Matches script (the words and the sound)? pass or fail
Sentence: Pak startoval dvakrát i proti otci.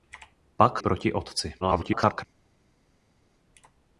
fail